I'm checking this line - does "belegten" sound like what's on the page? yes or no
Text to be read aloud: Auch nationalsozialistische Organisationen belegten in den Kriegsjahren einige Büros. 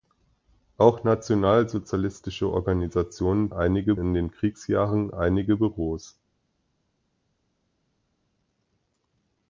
no